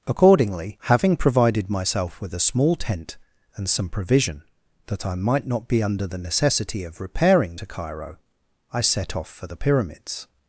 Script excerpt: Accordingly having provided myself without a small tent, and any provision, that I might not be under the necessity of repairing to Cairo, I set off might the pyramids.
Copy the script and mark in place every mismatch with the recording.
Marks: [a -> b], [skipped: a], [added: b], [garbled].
Accordingly having provided myself [without -> with] a small tent, and [any -> some] provision, that I might not be under the necessity of repairing to Cairo, I set off [might -> for] the pyramids.